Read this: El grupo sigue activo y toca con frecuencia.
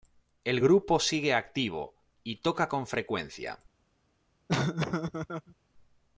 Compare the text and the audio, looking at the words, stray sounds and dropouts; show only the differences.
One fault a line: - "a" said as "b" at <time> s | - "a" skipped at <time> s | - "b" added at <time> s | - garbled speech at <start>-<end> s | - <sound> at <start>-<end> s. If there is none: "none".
- laugh at 4.5-5.5 s